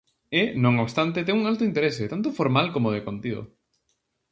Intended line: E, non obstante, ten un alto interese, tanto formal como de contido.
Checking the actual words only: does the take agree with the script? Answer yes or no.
yes